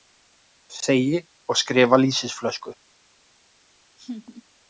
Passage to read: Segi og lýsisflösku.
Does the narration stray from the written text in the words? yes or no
yes